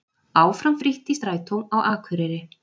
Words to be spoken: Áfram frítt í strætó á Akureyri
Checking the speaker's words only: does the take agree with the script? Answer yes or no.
yes